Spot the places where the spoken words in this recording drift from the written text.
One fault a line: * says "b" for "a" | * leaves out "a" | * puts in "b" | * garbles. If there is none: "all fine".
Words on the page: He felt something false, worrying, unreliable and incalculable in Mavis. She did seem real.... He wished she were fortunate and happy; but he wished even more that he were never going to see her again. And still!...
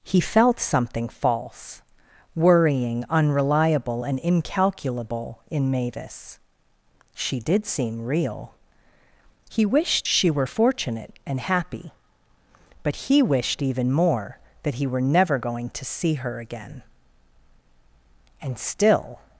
all fine